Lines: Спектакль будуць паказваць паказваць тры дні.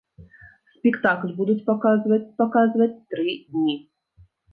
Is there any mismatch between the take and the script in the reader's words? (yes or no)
no